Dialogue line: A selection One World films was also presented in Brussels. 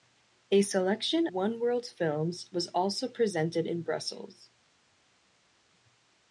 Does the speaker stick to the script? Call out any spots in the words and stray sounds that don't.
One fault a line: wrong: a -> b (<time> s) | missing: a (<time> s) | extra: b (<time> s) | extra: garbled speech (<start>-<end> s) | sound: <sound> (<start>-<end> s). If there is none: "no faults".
no faults